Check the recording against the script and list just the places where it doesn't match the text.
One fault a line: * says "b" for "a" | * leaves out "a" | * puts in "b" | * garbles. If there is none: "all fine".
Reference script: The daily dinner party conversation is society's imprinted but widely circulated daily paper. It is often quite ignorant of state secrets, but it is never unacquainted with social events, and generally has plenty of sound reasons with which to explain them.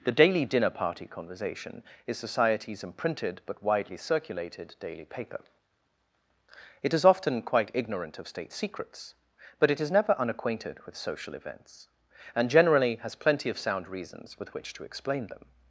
all fine